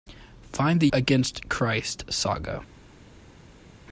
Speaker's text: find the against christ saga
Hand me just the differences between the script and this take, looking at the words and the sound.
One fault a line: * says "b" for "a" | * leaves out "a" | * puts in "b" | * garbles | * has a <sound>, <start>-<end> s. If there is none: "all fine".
all fine